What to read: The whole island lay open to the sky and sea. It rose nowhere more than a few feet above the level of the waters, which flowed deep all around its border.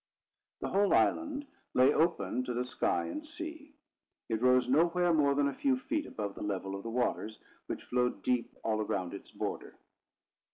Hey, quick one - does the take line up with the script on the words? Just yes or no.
yes